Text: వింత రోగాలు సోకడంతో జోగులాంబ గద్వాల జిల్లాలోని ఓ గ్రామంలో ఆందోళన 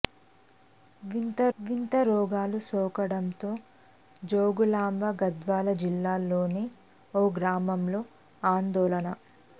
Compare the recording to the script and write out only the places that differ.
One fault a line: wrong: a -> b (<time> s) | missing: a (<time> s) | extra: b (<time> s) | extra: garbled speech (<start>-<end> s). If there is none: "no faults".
extra: వింత (1.6 s)